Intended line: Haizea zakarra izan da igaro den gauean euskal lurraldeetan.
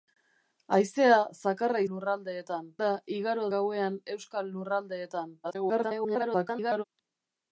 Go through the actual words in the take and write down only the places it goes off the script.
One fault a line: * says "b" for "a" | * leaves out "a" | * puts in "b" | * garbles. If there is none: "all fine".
* says "lurraldeetan" for "izan"
* leaves out "den"
* garbles